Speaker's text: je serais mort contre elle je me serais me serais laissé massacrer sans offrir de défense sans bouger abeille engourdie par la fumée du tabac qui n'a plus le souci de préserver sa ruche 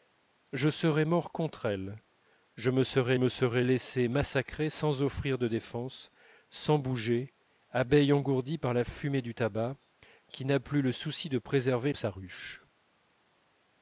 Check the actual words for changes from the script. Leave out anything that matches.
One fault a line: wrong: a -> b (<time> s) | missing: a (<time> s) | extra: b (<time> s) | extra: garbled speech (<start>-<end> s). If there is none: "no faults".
no faults